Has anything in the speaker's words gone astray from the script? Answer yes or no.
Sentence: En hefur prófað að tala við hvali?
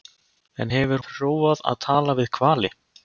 no